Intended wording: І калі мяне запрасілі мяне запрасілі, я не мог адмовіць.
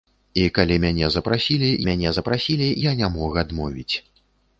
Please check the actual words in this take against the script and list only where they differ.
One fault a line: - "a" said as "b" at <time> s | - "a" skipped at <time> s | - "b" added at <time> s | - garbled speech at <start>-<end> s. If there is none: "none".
none